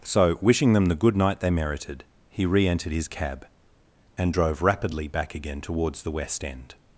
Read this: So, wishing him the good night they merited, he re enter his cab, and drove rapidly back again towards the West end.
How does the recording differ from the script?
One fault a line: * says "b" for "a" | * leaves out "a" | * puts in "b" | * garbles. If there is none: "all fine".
* says "them" for "him"
* says "entered" for "enter"